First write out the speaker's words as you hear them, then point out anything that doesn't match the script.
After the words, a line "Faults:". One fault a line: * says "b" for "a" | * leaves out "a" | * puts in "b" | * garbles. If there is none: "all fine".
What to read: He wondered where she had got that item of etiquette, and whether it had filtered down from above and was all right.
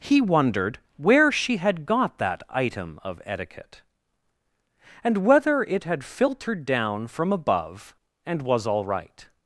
He wondered where she had got that item of etiquette, and whether it had filtered down from above and was all right.
Faults:
all fine